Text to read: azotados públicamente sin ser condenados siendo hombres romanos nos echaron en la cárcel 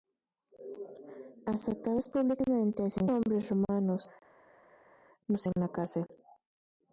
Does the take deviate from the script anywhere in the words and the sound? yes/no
yes